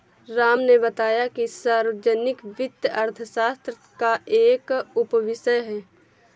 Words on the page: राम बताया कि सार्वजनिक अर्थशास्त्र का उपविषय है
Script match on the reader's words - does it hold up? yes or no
no